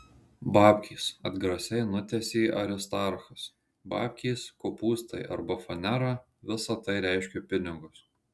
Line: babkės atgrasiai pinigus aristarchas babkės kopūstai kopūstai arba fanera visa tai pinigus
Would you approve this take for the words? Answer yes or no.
no